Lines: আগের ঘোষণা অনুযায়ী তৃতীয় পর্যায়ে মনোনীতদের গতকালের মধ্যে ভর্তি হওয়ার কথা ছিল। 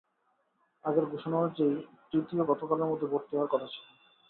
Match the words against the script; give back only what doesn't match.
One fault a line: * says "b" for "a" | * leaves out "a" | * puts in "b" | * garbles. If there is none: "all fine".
* leaves out "পর্যায়ে মনোনীতদের"